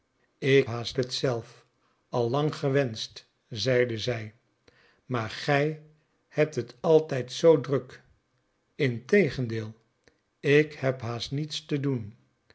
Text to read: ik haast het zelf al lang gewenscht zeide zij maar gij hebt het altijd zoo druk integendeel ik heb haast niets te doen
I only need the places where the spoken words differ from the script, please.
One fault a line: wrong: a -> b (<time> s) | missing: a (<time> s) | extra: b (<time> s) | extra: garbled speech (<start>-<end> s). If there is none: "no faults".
no faults